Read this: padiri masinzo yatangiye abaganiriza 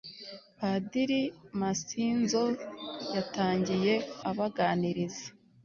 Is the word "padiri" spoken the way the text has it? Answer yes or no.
yes